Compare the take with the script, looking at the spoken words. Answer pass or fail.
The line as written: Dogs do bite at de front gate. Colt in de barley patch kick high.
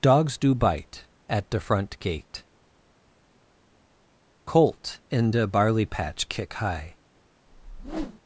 pass